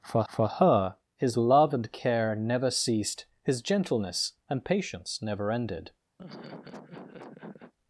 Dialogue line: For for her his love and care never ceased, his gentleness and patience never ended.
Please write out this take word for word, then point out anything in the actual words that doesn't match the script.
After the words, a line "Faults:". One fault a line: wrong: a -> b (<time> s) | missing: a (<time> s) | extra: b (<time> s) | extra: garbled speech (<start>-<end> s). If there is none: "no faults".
For for her his love and care never ceased, his gentleness and patience never ended.
Faults:
no faults